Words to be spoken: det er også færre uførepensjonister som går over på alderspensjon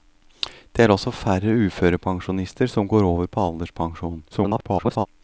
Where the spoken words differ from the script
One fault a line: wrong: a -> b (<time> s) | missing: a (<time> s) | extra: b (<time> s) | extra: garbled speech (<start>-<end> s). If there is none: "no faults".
extra: garbled speech (4.3-5.1 s)